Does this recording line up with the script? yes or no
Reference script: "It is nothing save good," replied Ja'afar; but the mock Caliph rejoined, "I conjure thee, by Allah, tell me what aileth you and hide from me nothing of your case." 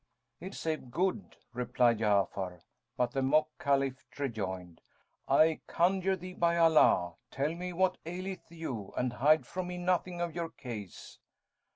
no